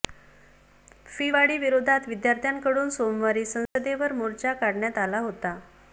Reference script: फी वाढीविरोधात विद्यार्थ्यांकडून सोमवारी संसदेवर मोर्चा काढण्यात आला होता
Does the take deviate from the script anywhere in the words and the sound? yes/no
yes